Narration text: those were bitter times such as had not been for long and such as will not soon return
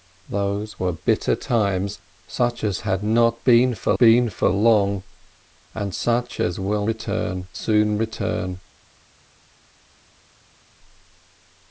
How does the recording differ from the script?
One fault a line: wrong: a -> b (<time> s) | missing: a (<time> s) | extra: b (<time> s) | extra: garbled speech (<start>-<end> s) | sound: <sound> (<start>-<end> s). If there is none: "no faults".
extra: been for (4.0 s)
wrong: not -> return (6.8 s)